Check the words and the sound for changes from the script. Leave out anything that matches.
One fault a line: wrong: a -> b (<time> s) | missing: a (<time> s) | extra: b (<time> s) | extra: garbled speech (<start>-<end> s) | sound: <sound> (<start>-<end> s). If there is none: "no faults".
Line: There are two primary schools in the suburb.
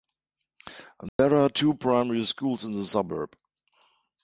sound: dropout (1.1-1.2 s)